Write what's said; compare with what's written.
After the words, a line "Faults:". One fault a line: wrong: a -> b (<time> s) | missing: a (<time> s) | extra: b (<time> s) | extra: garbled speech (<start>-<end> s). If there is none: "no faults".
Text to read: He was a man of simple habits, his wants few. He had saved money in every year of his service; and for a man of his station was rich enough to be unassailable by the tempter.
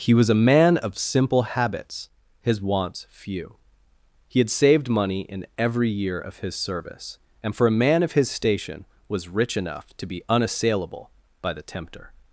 He was a man of simple habits, his wants few. He had saved money in every year of his service; and for a man of his station was rich enough to be unassailable by the tempter.
Faults:
no faults